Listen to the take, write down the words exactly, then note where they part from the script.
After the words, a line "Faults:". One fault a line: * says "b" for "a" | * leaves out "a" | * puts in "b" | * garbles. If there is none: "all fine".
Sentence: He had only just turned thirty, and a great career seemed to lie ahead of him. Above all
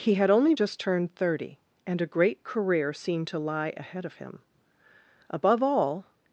He had only just turned thirty, and a great career seemed to lie ahead of him. Above all
Faults:
all fine